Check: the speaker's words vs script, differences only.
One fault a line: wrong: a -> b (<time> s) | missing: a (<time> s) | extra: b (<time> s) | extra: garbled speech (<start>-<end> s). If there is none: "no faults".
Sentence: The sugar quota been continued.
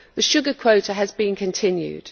extra: has (0.9 s)